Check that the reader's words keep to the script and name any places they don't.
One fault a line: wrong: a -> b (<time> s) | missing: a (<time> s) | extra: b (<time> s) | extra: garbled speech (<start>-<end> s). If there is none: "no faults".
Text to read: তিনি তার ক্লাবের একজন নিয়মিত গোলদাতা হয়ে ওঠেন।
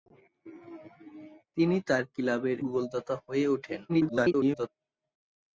missing: একজন নিয়মিত (2.6 s)
extra: garbled speech (3.9-4.7 s)